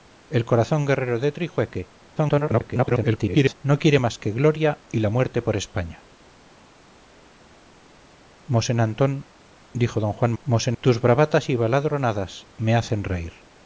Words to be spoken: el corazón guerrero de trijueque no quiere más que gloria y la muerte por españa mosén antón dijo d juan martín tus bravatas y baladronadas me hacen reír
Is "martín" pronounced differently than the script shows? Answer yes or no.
yes